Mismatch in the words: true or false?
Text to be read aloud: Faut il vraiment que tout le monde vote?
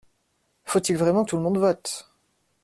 true